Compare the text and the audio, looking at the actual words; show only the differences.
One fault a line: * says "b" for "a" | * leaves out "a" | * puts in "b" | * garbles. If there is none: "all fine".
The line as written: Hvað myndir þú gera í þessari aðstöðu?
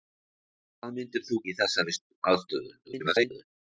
* leaves out "gera"
* garbles